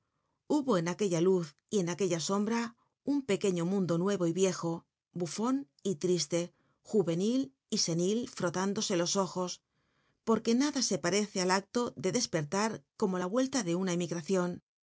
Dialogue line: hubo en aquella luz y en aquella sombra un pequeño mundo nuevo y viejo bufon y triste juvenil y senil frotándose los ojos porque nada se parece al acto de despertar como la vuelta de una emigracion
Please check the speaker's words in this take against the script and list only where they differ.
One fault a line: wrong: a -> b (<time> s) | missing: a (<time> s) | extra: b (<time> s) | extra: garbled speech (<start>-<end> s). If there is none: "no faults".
no faults